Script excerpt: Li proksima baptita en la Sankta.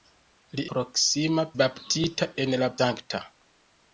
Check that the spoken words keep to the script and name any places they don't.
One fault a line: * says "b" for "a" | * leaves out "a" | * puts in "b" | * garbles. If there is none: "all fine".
all fine